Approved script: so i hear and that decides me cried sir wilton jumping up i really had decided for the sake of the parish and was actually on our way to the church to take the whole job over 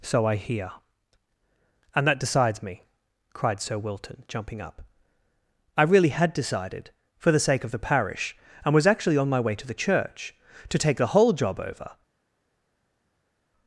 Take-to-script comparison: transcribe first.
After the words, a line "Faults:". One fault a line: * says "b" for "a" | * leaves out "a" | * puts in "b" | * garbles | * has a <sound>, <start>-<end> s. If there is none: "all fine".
so i hear and that decides me cried sir wilton jumping up i really had decided for the sake of the parish and was actually on my way to the church to take the whole job over
Faults:
* says "my" for "our"